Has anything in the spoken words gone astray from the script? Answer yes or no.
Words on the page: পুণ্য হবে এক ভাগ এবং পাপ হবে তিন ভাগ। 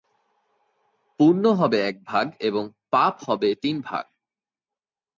no